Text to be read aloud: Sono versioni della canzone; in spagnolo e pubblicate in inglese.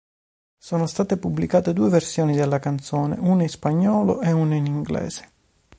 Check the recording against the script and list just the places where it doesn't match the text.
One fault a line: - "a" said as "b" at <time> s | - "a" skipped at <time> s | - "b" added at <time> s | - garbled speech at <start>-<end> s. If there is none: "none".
- "state pubblicate due" added at 0.9 s
- "una" added at 3.2 s
- "pubblicate" said as "una" at 4.3 s